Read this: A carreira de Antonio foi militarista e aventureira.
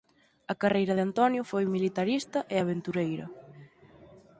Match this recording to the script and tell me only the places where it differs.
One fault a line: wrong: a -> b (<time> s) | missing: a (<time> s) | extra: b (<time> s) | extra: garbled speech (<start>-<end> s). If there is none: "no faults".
no faults